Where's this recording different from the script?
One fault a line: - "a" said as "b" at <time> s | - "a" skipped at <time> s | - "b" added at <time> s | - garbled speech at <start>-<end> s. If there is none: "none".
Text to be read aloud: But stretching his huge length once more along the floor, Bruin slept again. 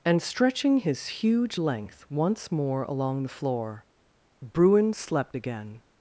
- "But" said as "And" at 0.0 s